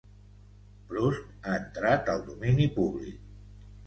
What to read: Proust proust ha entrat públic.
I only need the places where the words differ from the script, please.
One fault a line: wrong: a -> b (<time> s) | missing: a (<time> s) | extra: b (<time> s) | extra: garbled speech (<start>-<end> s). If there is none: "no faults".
missing: proust (1.3 s)
extra: al domini (2.1 s)